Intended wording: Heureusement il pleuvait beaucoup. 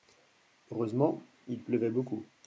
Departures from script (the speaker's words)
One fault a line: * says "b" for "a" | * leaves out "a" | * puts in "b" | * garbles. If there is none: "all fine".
all fine